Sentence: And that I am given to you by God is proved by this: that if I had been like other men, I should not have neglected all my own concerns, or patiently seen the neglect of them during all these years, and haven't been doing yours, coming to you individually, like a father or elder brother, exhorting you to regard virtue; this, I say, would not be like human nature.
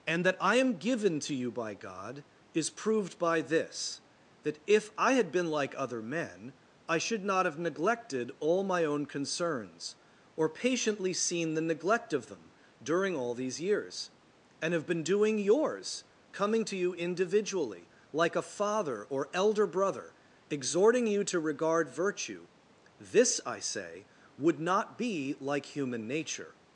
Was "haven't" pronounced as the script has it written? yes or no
no